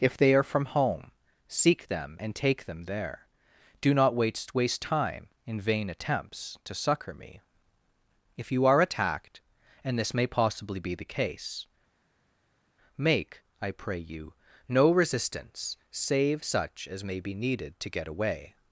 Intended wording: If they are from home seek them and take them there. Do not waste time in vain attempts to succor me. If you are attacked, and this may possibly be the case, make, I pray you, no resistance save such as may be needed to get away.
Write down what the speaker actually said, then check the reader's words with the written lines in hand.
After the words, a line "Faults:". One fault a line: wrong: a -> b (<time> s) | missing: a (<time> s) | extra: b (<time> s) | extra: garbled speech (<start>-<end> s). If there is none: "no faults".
If they are from home seek them and take them there. Do not waste waste time in vain attempts to succor me. If you are attacked, and this may possibly be the case, make, I pray you, no resistance save such as may be needed to get away.
Faults:
extra: waste (4.5 s)